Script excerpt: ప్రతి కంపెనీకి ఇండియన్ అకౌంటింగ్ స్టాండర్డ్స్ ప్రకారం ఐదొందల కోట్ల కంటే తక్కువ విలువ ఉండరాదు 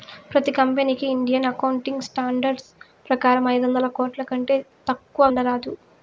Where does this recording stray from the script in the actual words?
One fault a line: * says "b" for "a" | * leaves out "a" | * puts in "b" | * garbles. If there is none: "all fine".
* leaves out "విలువ"